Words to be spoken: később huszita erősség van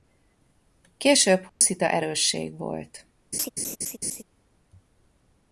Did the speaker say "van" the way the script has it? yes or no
no